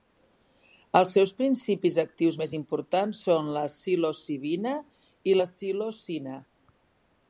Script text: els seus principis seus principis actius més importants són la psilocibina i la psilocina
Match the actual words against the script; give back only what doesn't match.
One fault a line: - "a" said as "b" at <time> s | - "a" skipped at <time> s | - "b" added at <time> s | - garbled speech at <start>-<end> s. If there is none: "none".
- "seus principis" skipped at 2.0 s